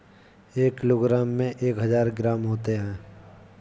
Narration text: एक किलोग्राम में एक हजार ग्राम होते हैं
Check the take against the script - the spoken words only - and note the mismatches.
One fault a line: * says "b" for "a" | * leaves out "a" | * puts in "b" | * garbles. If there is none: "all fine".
all fine